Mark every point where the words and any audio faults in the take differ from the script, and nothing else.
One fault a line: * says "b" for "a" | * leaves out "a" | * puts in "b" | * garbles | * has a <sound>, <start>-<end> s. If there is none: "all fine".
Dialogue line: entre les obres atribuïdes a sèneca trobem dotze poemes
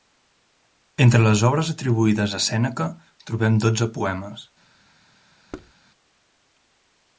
* has a thud, 5.5-5.7 s